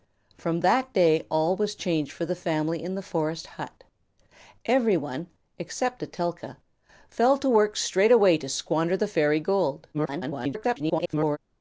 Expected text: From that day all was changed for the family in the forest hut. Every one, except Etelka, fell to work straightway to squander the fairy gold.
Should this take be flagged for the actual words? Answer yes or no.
yes